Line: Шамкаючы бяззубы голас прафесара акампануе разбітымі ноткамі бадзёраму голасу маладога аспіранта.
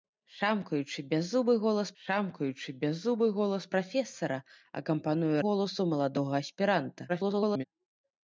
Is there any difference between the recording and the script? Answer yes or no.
yes